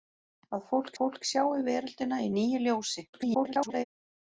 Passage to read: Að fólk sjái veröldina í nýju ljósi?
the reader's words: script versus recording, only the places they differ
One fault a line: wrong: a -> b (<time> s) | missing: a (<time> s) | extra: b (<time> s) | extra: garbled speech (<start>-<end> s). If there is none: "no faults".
extra: fólk (1.0 s)
extra: garbled speech (3.1-3.8 s)